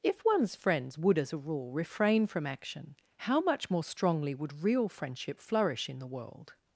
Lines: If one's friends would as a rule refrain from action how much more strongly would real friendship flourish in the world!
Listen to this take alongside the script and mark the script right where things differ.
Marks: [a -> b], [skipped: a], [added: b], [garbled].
If one's friends would as a rule refrain from action how much more strongly would real friendship flourish in the world!